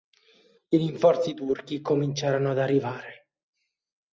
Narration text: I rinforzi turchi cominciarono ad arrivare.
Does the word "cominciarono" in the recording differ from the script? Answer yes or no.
no